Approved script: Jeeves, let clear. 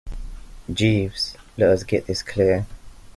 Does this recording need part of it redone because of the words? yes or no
yes